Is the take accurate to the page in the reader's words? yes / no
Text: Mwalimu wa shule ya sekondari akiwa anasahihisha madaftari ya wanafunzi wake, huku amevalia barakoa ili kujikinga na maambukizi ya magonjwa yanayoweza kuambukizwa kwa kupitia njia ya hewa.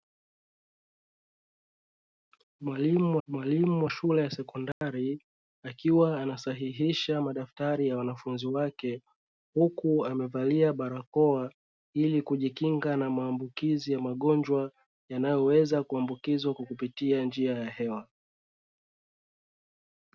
no